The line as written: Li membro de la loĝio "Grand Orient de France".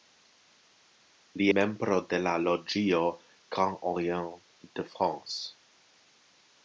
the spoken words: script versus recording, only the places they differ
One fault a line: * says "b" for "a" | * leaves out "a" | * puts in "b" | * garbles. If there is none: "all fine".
all fine